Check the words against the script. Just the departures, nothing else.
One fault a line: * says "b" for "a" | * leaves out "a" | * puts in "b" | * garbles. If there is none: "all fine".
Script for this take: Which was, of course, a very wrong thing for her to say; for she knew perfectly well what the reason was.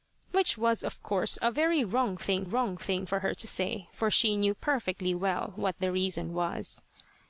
* puts in "wrong thing"